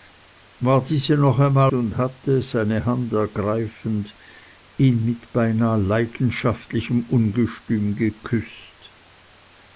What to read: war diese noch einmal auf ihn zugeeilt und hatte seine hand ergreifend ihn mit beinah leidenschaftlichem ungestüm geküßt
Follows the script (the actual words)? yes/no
no